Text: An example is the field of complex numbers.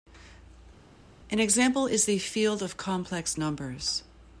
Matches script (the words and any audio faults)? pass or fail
pass